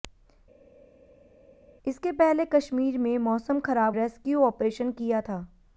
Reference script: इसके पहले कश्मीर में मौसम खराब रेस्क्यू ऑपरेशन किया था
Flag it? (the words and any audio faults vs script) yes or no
no